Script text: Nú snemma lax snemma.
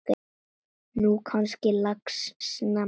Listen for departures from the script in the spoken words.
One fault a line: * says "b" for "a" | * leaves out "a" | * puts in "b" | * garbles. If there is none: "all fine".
* says "gangi" for "snemma"